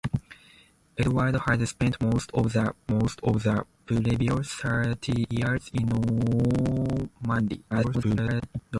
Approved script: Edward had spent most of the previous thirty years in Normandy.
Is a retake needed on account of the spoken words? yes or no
yes